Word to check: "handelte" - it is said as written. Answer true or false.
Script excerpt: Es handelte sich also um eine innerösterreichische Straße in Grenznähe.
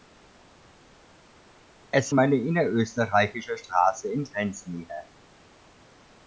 false